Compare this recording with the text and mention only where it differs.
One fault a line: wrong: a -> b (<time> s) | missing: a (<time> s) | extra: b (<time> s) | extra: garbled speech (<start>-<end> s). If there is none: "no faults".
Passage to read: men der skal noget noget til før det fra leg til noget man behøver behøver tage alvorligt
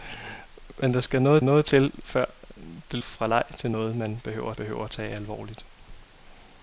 no faults